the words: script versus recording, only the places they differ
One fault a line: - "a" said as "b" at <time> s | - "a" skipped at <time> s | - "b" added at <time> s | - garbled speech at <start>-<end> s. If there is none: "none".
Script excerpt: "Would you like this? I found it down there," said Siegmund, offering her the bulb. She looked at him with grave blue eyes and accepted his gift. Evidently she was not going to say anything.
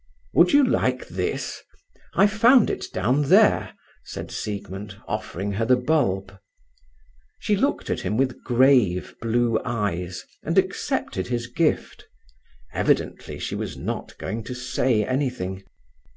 none